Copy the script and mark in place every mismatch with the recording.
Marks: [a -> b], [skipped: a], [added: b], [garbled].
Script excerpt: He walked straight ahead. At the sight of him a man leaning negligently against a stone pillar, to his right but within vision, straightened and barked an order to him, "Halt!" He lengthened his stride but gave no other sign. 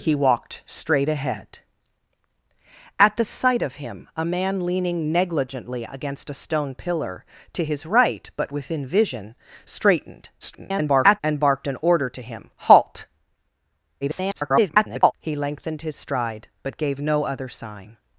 He walked straight ahead. At the sight of him a man leaning negligently against a stone pillar, to his right but within vision, straightened [garbled] and barked an order to him, "Halt!" [garbled] He lengthened his stride but gave no other sign.